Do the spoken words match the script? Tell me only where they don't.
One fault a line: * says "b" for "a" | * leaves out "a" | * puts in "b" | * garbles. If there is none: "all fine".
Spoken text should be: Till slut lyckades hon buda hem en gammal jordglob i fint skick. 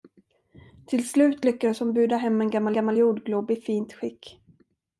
* puts in "gammal"